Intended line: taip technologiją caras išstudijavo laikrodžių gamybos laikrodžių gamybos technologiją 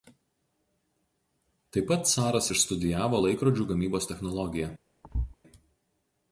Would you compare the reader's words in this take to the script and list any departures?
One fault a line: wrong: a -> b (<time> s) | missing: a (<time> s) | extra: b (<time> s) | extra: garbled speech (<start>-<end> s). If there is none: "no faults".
wrong: technologiją -> pat (1.9 s)
missing: laikrodžių gamybos (4.1 s)